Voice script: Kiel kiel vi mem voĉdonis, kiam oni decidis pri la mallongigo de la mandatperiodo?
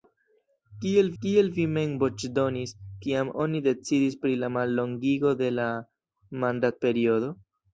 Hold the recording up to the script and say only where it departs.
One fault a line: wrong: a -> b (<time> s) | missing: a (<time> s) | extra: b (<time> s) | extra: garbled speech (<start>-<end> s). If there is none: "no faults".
no faults